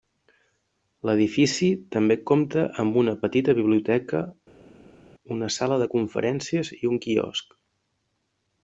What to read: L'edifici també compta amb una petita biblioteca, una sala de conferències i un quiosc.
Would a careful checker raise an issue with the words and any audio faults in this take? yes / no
no